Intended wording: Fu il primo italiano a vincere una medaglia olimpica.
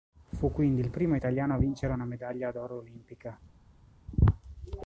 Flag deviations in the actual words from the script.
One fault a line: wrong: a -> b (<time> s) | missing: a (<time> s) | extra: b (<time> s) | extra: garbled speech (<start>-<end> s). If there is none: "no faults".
extra: quindi (0.5 s)
extra: d'oro (2.5 s)